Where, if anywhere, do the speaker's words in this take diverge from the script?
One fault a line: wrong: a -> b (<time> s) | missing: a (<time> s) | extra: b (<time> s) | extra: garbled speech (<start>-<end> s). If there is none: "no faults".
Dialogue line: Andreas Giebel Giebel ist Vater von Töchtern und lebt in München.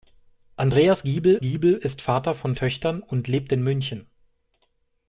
no faults